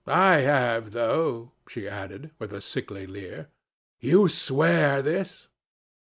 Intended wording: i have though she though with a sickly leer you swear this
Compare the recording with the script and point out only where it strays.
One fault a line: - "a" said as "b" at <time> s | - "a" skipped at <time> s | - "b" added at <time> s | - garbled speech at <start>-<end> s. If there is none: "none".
- "though" said as "added" at 1.9 s